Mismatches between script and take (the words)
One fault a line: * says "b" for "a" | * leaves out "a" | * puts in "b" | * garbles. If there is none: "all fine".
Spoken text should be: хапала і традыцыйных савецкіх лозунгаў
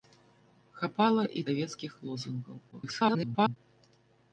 * leaves out "традыцыйных"
* garbles